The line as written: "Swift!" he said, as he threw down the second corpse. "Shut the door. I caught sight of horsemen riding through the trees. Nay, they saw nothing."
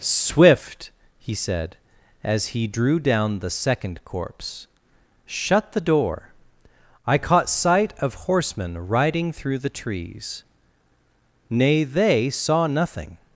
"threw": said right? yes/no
no